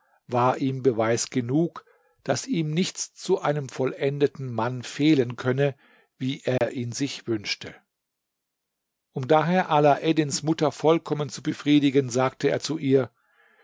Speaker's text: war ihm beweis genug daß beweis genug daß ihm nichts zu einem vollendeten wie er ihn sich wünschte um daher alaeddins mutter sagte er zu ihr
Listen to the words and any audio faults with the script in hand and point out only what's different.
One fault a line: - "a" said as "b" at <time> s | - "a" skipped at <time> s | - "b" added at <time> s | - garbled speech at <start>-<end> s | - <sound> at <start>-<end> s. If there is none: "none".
- "beweis genug daß" skipped at 2.5 s
- "mann fehlen könne" added at 4.5 s
- dropout at 6.6-6.6 s
- "vollkommen zu befriedigen" added at 10.7 s